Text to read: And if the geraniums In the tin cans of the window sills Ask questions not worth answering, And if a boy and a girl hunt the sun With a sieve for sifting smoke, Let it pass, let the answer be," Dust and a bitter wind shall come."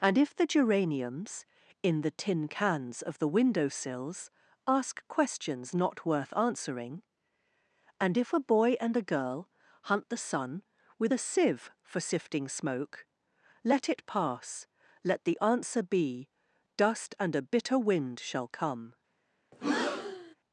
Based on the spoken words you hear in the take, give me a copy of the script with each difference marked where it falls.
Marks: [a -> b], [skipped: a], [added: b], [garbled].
And if the geraniums In the tin cans of the window sills Ask questions not worth answering, And if a boy and a girl hunt the sun With a sieve for sifting smoke, Let it pass, let the answer be," Dust and a bitter wind shall come."